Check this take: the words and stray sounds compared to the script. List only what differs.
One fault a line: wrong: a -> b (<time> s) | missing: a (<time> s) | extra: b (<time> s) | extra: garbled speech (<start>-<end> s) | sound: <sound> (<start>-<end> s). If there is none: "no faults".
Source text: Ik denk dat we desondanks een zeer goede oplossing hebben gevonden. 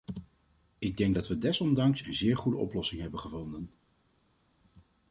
no faults